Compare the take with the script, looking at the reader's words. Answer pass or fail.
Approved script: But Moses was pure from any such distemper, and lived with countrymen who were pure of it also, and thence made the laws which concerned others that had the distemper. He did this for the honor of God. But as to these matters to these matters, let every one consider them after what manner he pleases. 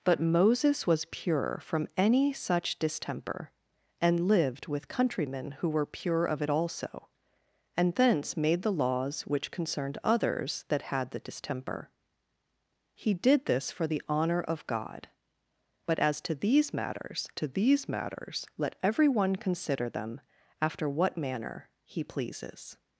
pass